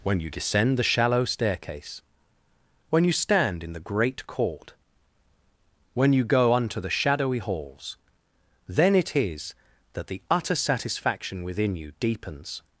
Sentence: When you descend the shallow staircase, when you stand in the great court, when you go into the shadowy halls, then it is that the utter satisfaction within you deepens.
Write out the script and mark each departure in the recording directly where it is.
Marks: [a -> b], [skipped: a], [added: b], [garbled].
When you descend the shallow staircase, when you stand in the great court, when you go [into -> unto] the shadowy halls, then it is that the utter satisfaction within you deepens.